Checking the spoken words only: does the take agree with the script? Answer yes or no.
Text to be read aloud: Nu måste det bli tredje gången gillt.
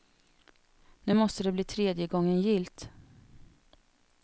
yes